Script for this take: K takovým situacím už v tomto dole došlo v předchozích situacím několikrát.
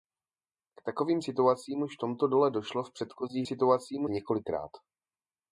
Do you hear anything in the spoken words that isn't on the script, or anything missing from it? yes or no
no